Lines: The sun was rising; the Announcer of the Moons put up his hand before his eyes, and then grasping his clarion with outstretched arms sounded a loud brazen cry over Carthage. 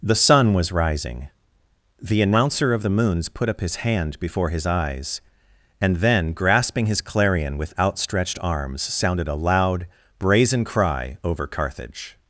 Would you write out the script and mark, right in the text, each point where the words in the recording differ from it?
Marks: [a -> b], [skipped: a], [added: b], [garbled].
The sun was rising; the Announcer of the Moons put up his hand before his eyes, and then grasping his clarion with outstretched arms sounded a loud brazen cry over Carthage.